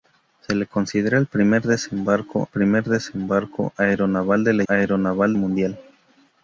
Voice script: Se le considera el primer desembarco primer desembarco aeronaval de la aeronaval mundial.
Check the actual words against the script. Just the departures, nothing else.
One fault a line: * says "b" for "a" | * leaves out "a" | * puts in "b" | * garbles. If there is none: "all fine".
all fine